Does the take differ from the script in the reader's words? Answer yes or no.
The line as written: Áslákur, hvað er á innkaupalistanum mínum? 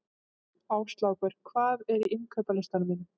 no